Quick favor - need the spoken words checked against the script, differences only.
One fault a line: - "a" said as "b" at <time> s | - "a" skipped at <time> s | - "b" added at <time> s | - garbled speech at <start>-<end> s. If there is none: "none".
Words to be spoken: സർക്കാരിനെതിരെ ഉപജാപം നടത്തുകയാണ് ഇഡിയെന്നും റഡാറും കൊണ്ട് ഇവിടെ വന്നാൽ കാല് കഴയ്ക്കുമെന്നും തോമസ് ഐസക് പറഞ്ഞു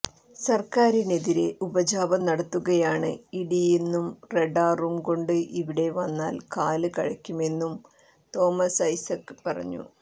none